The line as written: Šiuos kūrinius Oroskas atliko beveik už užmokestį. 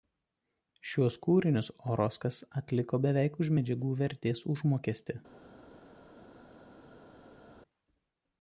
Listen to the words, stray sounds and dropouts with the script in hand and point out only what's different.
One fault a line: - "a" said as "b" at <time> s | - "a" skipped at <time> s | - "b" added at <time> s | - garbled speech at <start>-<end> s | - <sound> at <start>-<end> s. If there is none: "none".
- "medžiagų vertės" added at 3.6 s